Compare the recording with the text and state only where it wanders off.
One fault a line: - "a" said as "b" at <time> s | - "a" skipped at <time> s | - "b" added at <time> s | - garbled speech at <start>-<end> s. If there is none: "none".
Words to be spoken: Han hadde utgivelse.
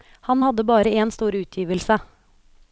- "bare en stor" added at 0.6 s